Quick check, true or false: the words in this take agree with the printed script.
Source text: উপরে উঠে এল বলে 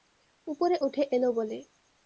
true